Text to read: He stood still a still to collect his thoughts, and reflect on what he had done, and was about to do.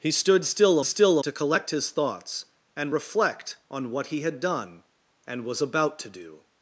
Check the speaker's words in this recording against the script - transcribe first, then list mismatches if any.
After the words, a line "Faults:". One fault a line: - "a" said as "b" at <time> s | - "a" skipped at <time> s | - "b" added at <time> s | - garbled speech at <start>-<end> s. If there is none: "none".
He stood still a still to collect his thoughts, and reflect on what he had done, and was about to do.
Faults:
none